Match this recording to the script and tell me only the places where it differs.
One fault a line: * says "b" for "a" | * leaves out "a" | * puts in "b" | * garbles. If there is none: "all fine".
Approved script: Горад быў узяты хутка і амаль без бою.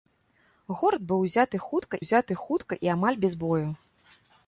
* puts in "узяты хутка"